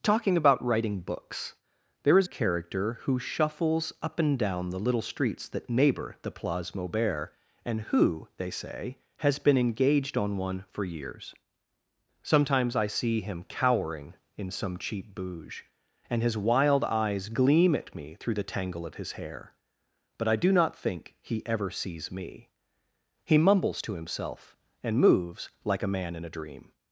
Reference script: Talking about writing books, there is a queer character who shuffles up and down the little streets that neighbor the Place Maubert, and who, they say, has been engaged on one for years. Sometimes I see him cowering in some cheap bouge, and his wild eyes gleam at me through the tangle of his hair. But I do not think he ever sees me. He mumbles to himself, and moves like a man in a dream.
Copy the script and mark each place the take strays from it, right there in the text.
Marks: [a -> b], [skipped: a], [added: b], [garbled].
Talking about writing books, there is [skipped: a queer] character who shuffles up and down the little streets that neighbor the Place Maubert, and who, they say, has been engaged on one for years. Sometimes I see him cowering in some cheap bouge, and his wild eyes gleam at me through the tangle of his hair. But I do not think he ever sees me. He mumbles to himself, and moves like a man in a dream.